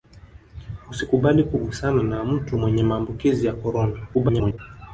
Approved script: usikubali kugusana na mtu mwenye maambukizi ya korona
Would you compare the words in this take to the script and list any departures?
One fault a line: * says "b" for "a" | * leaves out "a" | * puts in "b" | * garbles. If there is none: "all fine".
* garbles